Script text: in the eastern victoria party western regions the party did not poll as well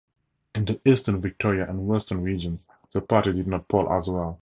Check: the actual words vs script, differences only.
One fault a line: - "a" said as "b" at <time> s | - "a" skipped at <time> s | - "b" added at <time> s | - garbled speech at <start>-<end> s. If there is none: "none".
- "party" said as "and" at 1.7 s